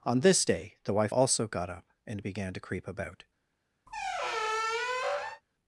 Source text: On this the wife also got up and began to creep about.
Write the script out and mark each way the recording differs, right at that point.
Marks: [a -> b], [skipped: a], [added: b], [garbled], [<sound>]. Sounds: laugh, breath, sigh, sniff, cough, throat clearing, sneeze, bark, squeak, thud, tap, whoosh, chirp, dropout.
On this [added: day] the wife also got up and began to creep about. [squeak]